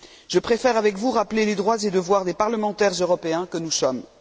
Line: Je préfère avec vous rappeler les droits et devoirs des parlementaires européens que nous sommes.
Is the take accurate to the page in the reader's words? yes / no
yes